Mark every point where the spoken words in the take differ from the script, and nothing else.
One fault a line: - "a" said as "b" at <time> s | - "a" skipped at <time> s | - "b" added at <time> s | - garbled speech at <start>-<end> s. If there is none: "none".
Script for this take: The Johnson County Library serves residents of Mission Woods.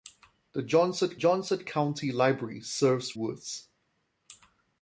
- "Johnson" added at 1.1 s
- "residents of Mission" skipped at 3.2 s